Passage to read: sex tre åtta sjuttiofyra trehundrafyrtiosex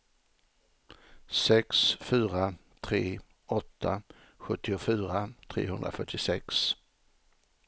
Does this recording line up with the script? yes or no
no